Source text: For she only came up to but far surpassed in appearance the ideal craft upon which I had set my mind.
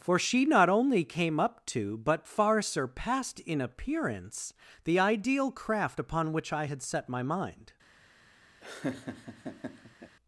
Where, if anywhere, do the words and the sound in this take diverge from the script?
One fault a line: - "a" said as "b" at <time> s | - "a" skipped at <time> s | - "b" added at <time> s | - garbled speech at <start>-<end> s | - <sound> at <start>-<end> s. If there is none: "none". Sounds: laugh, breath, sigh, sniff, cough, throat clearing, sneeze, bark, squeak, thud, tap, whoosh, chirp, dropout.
- "not" added at 0.5 s
- laugh at 8.6-10.2 s